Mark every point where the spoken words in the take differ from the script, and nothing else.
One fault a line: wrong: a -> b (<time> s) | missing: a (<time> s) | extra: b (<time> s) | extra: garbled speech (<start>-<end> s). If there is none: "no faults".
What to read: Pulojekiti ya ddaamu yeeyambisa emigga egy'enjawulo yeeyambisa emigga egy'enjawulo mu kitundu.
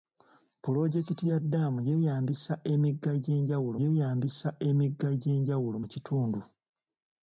no faults